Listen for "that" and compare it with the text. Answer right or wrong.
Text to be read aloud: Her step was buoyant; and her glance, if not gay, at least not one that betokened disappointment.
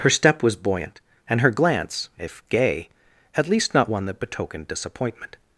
right